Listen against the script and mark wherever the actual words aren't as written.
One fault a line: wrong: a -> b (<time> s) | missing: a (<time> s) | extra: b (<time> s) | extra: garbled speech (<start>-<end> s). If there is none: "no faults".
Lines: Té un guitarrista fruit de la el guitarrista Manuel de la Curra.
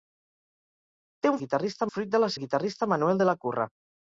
no faults